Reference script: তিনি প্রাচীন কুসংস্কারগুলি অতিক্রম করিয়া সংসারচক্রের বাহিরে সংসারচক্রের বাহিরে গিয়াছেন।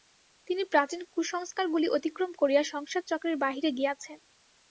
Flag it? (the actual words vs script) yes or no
yes